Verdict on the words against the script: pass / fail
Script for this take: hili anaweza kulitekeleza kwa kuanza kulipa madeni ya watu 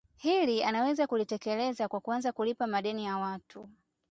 pass